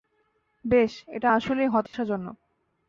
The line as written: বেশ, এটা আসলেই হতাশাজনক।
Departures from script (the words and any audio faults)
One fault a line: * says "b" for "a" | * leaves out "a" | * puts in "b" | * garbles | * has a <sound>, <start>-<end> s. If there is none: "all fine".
* has a dropout, 1.9-1.9 s